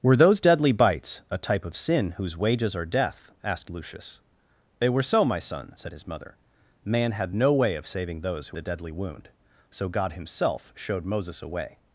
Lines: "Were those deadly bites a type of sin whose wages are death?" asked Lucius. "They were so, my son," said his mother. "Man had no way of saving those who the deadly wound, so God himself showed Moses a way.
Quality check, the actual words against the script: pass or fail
pass